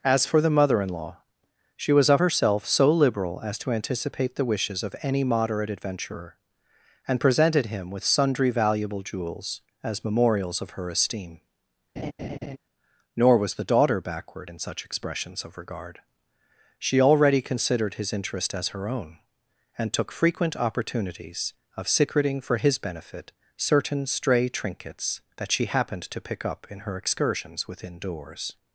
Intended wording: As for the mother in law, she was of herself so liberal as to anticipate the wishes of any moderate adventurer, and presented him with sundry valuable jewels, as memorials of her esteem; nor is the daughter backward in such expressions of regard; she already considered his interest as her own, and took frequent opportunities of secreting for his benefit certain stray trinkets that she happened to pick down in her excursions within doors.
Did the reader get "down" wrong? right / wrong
wrong